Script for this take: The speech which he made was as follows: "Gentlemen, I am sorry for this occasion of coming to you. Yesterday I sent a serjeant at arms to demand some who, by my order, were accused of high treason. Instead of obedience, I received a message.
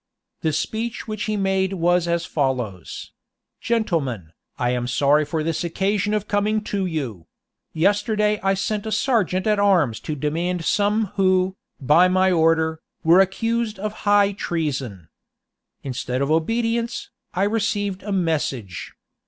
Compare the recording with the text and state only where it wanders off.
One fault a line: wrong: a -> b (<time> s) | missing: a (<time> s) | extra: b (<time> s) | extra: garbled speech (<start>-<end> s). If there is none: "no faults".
no faults